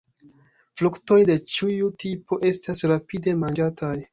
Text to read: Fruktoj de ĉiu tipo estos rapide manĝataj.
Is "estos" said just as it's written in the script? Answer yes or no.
no